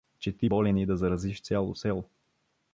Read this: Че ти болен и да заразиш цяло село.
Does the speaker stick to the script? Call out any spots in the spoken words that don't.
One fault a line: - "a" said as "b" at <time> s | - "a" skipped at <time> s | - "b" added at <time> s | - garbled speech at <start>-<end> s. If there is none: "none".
none